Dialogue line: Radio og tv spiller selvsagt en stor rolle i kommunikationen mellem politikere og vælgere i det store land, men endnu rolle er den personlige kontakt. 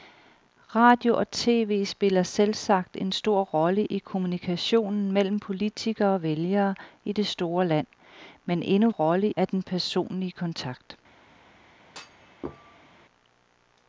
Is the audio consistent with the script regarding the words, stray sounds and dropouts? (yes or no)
no